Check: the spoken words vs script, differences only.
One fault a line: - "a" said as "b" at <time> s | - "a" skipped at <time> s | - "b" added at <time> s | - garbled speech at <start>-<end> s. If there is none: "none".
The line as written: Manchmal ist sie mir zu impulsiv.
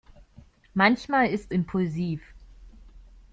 - "sie mir zu" skipped at 1.5 s